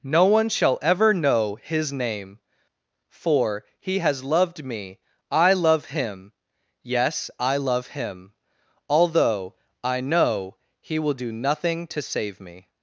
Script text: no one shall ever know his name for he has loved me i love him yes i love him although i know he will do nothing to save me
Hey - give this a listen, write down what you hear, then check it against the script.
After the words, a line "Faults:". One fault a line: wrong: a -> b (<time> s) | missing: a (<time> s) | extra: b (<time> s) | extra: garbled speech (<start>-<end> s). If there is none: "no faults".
no one shall ever know his name for he has loved me i love him yes i love him although i know he will do nothing to save me
Faults:
no faults